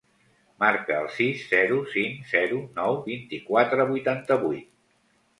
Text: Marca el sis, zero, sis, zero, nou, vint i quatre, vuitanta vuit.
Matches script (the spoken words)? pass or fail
fail